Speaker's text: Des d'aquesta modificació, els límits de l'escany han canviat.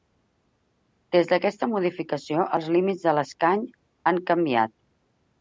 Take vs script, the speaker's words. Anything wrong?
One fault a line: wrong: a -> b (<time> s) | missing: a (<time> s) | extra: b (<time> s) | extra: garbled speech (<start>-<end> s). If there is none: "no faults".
no faults